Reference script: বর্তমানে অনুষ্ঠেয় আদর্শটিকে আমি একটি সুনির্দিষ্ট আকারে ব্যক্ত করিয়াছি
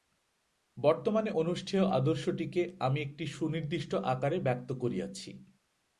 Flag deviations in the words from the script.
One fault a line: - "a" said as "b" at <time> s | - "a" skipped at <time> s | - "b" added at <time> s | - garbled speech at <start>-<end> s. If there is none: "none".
none